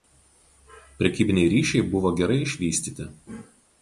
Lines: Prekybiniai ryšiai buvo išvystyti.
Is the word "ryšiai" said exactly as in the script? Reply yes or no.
yes